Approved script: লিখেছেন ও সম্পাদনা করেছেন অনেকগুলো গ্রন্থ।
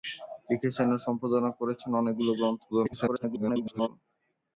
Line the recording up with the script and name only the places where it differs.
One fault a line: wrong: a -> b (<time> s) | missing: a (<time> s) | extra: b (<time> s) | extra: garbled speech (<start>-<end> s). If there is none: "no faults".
extra: garbled speech (2.7-3.9 s)